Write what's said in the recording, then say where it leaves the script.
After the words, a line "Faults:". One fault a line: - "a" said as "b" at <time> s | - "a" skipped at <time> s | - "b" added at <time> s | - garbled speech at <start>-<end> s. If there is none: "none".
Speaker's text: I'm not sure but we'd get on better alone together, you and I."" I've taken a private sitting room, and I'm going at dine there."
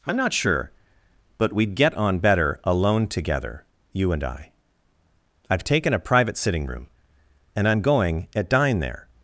I'm not sure but we'd get on better alone together, you and I."" I've taken a private sitting room, and I'm going at dine there."
Faults:
none